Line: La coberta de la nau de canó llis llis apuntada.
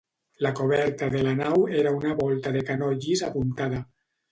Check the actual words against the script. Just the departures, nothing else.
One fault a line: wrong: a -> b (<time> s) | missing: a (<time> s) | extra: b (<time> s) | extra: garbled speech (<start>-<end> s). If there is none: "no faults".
extra: era una volta (1.8 s)
missing: llis (3.3 s)